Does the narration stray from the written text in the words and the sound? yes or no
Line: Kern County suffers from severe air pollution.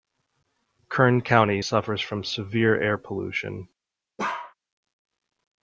yes